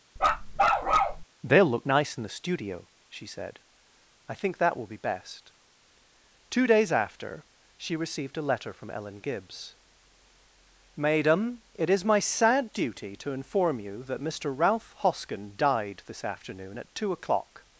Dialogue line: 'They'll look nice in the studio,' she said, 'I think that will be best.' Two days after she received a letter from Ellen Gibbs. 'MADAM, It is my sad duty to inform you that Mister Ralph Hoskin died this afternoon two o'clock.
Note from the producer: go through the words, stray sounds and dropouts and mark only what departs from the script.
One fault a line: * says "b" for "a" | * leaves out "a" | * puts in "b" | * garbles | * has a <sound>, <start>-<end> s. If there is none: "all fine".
* has a bark, 0.2-1.2 s
* puts in "at"